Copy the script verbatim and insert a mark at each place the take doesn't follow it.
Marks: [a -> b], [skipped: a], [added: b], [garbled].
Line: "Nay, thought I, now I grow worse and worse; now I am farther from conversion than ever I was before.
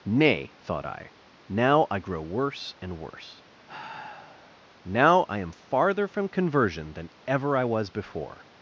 "Nay, thought I, now I grow worse and worse; now I am farther from conversion than ever I was before.